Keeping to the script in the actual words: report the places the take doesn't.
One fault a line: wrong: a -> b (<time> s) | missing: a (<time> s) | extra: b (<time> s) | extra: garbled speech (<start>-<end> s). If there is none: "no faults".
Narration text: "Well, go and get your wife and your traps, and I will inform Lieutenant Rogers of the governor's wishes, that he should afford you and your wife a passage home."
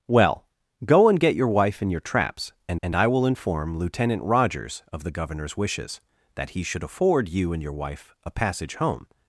extra: and (2.8 s)